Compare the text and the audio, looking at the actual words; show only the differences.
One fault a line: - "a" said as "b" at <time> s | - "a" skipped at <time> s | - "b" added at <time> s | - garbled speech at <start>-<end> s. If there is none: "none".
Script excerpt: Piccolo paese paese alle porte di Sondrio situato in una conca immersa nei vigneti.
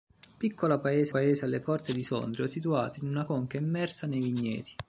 none